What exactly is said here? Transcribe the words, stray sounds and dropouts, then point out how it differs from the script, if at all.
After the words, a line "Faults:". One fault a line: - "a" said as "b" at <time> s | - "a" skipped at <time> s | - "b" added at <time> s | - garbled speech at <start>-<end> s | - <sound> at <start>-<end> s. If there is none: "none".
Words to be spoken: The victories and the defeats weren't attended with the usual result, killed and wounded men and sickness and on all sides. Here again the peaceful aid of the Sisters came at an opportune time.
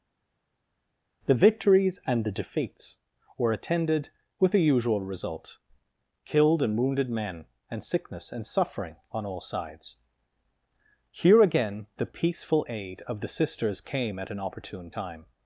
The victories and the defeats were attended with the usual result, killed and wounded men and sickness and suffering on all sides. Here again the peaceful aid of the Sisters came at an opportune time.
Faults:
- "weren't" said as "were" at 3.4 s
- "suffering" added at 8.5 s